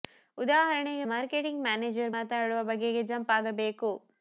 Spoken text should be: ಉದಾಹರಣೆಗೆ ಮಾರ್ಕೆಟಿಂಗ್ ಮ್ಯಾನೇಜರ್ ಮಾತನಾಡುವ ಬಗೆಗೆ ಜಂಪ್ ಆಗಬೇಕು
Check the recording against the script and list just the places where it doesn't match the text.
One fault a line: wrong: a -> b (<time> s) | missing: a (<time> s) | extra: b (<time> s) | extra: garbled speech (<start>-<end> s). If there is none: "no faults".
no faults